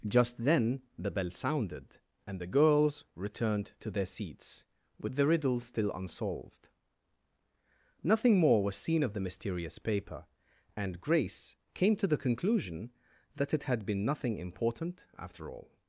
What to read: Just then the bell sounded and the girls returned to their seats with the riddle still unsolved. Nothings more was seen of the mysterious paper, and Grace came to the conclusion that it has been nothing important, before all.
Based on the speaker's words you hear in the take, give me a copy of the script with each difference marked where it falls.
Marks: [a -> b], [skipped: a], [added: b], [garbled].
Just then the bell sounded and the girls returned to their seats with the riddle still unsolved. [Nothings -> Nothing] more was seen of the mysterious paper, and Grace came to the conclusion that it [has -> had] been nothing important, [before -> after] all.